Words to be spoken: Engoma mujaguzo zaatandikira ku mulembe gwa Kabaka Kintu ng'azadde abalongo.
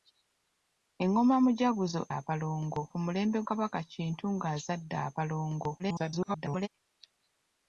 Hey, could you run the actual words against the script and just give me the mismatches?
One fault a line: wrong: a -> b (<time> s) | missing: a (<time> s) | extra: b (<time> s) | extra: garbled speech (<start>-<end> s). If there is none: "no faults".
wrong: zaatandikira -> abalongo (2.2 s)
missing: gwa (3.4 s)
extra: garbled speech (5.8-6.7 s)